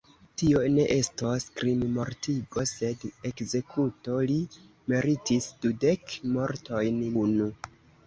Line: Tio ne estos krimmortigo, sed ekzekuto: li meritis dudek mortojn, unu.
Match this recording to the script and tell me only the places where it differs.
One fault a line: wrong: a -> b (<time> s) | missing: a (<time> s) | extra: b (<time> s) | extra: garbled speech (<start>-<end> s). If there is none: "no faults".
no faults